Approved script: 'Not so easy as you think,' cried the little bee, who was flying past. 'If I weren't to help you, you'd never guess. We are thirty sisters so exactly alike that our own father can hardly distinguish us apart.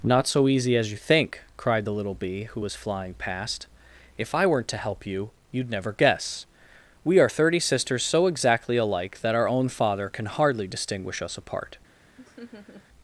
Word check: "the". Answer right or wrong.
right